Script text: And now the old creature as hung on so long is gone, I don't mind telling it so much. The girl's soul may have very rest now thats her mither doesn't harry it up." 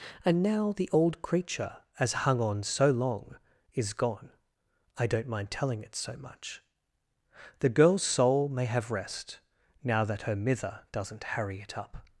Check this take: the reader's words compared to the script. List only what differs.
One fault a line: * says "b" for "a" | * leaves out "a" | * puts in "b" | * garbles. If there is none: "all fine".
* leaves out "very"
* says "that" for "thats"